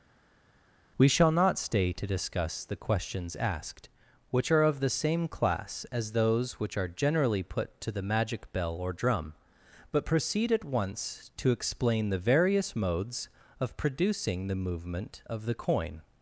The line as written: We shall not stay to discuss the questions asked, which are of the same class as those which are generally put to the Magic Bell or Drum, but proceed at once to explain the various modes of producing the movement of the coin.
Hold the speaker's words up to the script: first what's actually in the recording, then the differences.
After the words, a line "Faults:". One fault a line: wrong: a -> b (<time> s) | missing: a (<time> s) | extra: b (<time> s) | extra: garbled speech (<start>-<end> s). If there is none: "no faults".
We shall not stay to discuss the questions asked, which are of the same class as those which are generally put to the Magic Bell or Drum, but proceed at once to explain the various modes of producing the movement of the coin.
Faults:
no faults